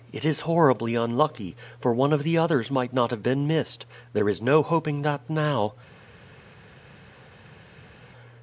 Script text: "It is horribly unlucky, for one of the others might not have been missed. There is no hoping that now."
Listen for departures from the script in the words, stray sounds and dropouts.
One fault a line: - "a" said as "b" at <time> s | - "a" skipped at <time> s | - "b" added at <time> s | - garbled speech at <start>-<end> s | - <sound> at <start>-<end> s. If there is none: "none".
none